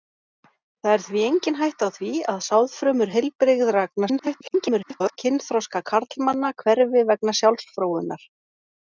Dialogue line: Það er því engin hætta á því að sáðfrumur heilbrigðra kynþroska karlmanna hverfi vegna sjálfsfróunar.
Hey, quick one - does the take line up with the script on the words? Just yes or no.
no